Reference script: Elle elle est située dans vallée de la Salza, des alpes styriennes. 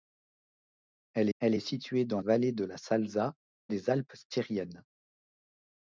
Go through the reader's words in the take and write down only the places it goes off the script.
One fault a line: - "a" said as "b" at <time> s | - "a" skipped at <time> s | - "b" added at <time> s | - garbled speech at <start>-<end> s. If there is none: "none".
none